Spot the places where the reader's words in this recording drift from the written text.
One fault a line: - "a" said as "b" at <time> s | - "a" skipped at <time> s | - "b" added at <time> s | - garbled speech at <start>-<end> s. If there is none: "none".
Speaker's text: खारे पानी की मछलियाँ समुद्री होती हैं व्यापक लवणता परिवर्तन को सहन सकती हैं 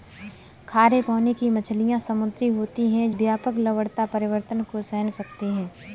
none